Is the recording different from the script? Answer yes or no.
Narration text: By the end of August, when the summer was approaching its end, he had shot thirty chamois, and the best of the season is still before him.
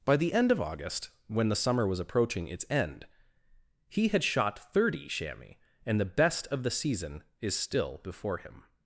no